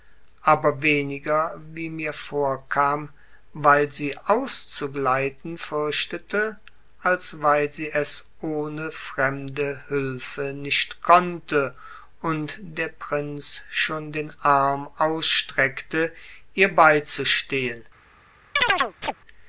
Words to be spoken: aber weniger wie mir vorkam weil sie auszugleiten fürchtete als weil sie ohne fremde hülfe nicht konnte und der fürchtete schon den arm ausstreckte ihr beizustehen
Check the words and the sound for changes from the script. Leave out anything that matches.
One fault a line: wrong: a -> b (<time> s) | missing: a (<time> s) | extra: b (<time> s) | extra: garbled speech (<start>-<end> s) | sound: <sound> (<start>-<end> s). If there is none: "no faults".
extra: es (7.9 s)
wrong: fürchtete -> prinz (12.9 s)
sound: chirp (18.6-19.1 s)